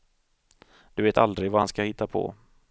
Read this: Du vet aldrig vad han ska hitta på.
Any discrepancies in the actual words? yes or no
no